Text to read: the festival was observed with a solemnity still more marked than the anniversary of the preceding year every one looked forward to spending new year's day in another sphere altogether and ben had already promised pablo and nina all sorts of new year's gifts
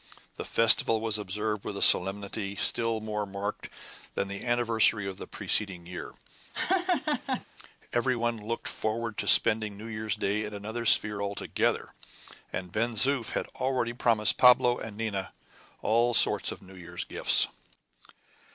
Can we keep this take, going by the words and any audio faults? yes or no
no